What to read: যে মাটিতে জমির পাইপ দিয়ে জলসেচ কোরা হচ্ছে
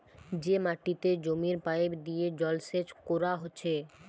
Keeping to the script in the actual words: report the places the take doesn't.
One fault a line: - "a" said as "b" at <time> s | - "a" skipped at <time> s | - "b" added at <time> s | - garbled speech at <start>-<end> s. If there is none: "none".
none